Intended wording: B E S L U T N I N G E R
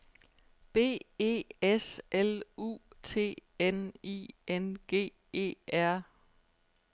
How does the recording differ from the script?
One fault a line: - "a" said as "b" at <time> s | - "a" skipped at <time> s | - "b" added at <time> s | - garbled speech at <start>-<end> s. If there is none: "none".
none